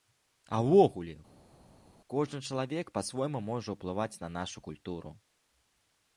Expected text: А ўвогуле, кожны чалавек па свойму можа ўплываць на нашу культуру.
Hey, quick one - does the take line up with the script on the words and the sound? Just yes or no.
yes